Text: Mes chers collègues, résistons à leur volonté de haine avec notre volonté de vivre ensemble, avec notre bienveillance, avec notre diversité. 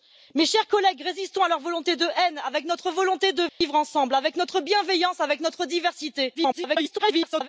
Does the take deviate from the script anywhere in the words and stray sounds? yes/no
yes